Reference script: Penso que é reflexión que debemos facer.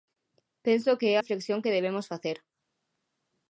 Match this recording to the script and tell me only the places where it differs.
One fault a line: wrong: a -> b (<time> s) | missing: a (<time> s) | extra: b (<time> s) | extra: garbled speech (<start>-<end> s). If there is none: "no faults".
no faults